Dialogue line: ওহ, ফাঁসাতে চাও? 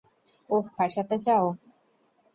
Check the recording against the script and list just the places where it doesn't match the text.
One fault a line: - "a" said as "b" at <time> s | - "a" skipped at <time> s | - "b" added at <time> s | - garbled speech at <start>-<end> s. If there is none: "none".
none